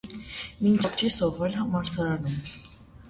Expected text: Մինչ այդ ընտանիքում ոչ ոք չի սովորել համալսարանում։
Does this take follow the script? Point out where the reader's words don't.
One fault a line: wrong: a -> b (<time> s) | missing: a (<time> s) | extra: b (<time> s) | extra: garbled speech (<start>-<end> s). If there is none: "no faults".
missing: այդ ընտանիքում ոչ (0.8 s)